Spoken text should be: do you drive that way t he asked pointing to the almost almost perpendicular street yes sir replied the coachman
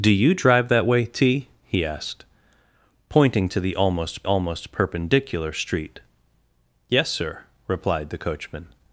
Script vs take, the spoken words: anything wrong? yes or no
no